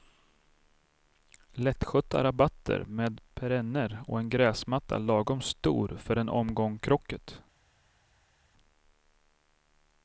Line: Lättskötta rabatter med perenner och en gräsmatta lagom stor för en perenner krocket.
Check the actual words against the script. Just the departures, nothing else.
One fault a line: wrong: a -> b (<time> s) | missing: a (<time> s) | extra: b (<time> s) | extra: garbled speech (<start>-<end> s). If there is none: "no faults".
wrong: perenner -> omgång (6.3 s)